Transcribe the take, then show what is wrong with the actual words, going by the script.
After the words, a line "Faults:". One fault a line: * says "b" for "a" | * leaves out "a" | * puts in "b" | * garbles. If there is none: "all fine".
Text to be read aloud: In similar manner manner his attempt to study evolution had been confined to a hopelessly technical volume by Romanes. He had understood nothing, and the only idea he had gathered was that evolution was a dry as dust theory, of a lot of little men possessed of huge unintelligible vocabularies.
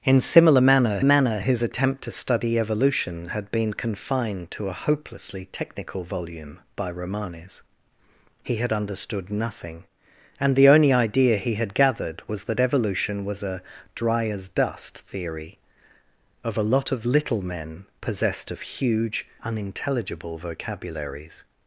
In similar manner manner his attempt to study evolution had been confined to a hopelessly technical volume by Romanes. He had understood nothing, and the only idea he had gathered was that evolution was a dry as dust theory, of a lot of little men possessed of huge unintelligible vocabularies.
Faults:
all fine